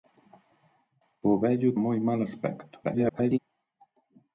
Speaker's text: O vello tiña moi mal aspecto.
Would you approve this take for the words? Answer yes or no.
no